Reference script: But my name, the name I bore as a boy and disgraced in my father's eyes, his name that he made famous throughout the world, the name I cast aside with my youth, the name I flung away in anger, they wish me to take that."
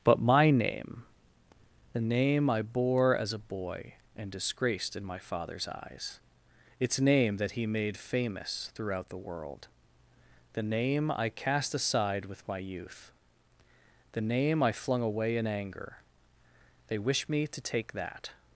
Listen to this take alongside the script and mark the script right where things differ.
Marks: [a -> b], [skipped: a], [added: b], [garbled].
But my name, the name I bore as a boy and disgraced in my father's eyes, [his -> its] name that he made famous throughout the world, the name I cast aside with my youth, the name I flung away in anger, they wish me to take that."